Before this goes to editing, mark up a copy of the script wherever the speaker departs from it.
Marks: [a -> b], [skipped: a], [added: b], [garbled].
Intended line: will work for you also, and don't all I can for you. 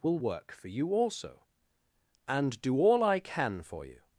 will work for you also, and [don't -> do] all I can for you.